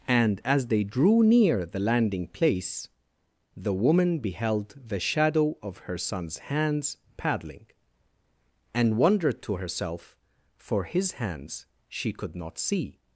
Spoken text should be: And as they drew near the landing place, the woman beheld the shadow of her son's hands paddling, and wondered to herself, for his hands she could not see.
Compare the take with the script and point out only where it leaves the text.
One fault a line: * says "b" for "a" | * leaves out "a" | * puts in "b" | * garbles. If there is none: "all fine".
all fine